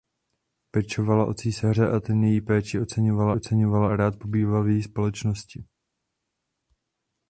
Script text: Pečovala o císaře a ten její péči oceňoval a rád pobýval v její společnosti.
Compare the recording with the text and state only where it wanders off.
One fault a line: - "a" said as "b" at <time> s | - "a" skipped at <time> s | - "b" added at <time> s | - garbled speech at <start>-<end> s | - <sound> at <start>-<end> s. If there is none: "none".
- "oceňoval" added at 3.3 s